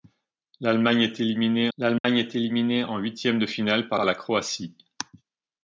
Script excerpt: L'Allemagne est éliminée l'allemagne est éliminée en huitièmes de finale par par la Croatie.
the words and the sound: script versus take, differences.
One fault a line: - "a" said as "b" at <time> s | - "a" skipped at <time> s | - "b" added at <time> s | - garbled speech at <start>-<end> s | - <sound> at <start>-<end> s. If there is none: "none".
- dropout at 2.0-2.0 s